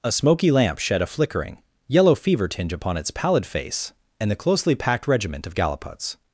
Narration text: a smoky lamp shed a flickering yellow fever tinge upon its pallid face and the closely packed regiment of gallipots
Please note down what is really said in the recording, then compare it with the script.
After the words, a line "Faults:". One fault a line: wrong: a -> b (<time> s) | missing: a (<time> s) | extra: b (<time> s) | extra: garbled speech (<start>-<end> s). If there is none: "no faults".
a smoky lamp shed a flickering yellow fever tinge upon its pallid face and the closely packed regiment of gallipots
Faults:
no faults